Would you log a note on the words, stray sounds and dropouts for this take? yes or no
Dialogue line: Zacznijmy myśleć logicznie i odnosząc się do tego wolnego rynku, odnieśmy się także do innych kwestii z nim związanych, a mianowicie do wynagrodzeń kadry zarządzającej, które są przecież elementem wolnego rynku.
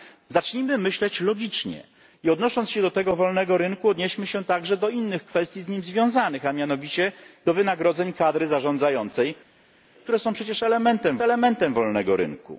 yes